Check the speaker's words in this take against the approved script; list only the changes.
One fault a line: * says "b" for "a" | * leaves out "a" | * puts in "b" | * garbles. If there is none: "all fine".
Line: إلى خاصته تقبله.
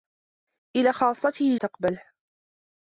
all fine